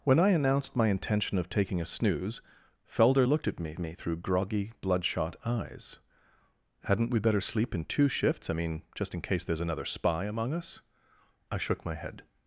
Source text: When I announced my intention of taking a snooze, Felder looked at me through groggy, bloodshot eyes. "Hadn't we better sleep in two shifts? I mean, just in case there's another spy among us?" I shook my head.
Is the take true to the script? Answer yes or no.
no